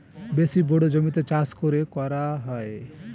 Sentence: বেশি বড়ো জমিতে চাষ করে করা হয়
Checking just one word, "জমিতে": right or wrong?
right